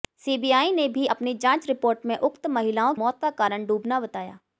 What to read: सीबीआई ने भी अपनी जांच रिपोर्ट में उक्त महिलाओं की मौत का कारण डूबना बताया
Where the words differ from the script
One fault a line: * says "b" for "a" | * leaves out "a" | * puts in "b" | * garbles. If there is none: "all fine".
* leaves out "की"